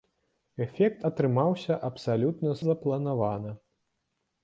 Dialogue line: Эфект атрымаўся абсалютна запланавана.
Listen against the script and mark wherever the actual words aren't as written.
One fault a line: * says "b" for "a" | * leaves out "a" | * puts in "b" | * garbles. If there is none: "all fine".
all fine